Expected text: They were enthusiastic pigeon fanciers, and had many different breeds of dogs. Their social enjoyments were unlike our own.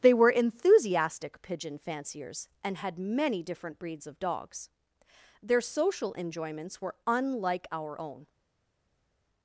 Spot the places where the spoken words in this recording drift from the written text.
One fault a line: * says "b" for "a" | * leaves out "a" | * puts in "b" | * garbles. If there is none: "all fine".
all fine